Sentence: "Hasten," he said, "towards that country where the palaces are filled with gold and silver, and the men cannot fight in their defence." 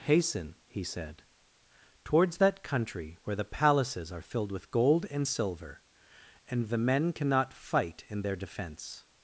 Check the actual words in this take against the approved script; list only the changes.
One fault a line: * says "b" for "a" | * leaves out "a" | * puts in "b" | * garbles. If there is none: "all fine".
all fine